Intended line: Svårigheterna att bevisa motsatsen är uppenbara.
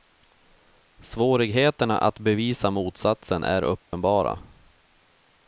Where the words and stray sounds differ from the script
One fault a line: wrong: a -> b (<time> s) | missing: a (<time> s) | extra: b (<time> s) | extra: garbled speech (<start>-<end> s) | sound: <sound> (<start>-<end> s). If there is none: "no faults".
sound: dropout (3.8-3.9 s)